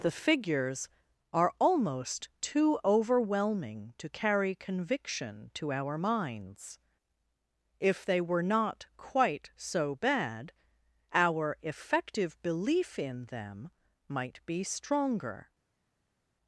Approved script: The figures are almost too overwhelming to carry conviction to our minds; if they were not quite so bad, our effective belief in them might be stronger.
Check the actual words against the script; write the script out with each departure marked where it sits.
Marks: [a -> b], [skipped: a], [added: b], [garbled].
The figures are almost too overwhelming to carry conviction to our minds; if they were not quite so bad, our effective belief in them might be stronger.